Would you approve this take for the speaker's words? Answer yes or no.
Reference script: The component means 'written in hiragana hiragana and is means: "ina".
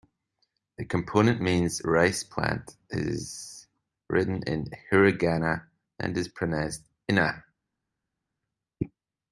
no